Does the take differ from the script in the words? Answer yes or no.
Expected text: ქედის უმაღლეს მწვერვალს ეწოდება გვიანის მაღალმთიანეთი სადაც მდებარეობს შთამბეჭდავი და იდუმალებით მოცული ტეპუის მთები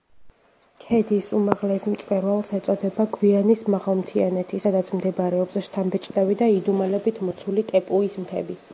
no